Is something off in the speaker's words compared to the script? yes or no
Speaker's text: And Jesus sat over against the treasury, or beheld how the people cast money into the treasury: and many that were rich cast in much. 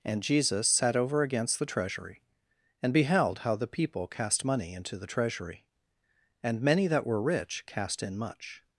yes